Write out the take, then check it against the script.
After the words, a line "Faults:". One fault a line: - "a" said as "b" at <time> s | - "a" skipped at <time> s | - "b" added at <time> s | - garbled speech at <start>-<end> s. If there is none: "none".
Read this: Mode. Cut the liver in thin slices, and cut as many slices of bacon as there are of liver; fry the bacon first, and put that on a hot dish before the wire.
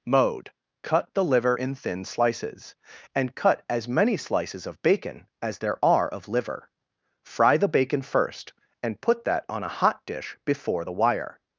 Mode. Cut the liver in thin slices, and cut as many slices of bacon as there are of liver; fry the bacon first, and put that on a hot dish before the wire.
Faults:
none